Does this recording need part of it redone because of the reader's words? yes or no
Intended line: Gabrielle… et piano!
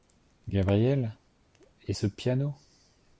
yes